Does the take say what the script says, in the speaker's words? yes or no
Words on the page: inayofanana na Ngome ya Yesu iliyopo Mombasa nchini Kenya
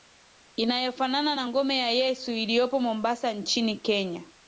yes